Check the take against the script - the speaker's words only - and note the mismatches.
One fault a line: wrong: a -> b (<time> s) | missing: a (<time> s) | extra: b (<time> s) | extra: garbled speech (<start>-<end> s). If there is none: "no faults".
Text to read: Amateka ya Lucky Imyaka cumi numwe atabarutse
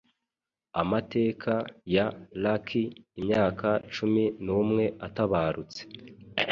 no faults